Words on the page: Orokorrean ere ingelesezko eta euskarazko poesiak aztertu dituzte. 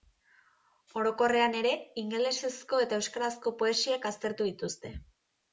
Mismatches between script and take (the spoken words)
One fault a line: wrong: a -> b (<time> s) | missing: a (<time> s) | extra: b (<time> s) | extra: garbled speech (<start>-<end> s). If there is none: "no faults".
no faults